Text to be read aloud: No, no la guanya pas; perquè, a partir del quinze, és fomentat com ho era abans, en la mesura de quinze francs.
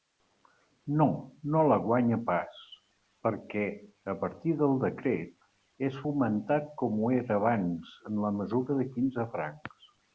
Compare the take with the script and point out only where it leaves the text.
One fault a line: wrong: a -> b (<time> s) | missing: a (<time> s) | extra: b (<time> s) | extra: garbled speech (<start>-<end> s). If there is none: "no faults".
wrong: quinze -> decret (4.9 s)